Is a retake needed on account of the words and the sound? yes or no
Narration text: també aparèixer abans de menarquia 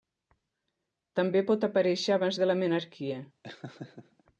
yes